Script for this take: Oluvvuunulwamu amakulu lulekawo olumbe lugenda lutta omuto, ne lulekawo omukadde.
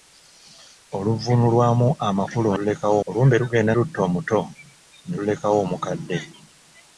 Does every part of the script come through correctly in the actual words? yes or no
yes